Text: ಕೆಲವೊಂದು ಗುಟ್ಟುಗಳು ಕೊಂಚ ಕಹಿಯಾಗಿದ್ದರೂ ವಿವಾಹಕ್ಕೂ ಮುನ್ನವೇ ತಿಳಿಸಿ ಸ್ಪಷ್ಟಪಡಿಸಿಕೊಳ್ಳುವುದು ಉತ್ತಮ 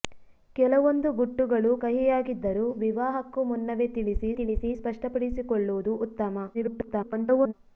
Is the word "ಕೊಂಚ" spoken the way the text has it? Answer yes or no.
no